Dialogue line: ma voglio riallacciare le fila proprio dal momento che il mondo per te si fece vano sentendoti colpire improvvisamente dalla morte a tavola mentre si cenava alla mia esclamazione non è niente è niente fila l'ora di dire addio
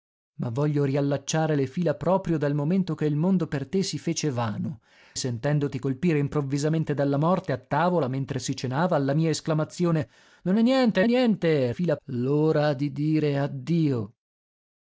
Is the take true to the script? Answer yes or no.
yes